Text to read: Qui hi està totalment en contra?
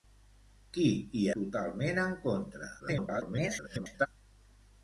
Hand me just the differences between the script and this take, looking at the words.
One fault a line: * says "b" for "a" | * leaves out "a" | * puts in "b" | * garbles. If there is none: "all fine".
* leaves out "està"
* garbles